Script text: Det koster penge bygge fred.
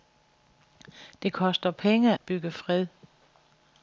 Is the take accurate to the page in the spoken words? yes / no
yes